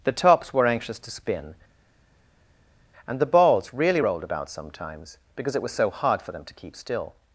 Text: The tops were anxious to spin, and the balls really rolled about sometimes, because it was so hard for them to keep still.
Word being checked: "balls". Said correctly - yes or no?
yes